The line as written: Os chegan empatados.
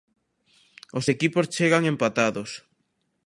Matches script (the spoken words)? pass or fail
fail